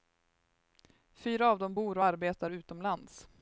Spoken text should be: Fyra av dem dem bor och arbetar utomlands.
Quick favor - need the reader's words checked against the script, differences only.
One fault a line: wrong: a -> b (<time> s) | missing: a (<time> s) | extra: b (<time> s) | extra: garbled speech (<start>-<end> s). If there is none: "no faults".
missing: dem (1.8 s)